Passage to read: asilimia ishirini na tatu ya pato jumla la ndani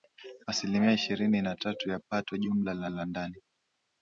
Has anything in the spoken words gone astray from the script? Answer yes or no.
yes